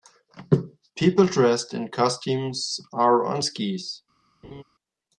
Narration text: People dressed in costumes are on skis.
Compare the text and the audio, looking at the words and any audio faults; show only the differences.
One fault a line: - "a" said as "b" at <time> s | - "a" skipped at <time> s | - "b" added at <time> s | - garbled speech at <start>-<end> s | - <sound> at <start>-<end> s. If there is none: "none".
- laugh at 4.4-4.6 s